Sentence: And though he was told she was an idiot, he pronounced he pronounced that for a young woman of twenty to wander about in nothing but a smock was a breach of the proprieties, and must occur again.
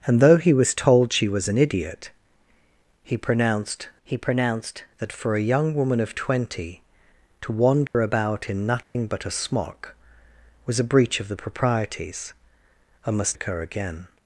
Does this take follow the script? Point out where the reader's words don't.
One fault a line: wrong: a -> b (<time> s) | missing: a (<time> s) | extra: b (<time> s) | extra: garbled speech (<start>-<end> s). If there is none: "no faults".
no faults